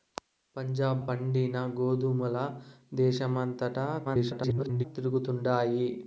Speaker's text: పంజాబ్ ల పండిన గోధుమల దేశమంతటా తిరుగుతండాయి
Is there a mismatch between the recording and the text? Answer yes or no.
yes